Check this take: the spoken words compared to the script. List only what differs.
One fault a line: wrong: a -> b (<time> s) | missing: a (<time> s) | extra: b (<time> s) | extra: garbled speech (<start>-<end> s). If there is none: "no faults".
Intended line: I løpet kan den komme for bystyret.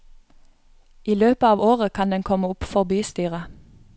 extra: av året (1.5 s)
extra: opp (2.5 s)